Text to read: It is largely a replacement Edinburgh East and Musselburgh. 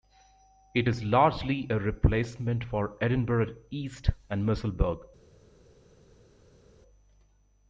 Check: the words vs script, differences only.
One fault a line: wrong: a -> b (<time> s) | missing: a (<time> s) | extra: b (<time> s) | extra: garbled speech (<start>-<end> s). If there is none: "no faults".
extra: for (2.6 s)